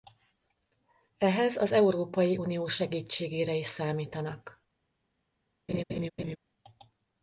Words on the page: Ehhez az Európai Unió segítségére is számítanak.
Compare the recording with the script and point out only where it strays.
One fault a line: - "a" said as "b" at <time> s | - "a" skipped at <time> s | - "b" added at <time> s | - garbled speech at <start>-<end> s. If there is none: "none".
none